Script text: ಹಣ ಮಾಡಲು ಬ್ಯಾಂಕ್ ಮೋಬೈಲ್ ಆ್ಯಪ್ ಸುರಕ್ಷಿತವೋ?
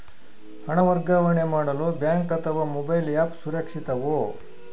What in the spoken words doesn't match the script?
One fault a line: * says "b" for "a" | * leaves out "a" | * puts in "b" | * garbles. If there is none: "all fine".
* puts in "ವರ್ಗಾವಣೆ"
* puts in "ಅಥವಾ"